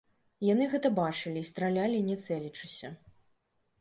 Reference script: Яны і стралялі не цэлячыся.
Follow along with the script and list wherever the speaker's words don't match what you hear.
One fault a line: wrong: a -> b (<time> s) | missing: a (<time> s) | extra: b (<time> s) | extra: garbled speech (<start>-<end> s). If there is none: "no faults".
extra: гэта бачылі (0.7 s)